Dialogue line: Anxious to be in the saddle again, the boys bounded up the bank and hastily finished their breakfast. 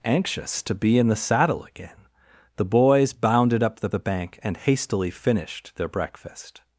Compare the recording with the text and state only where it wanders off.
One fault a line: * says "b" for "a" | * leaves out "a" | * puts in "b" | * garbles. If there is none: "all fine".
* puts in "the"